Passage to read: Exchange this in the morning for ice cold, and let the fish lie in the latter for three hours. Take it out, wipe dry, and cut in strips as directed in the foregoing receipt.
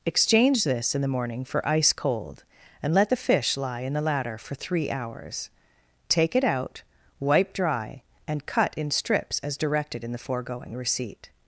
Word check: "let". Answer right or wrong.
right